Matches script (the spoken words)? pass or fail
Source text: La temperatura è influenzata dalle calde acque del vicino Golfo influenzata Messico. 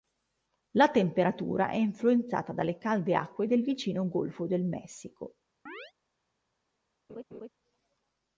fail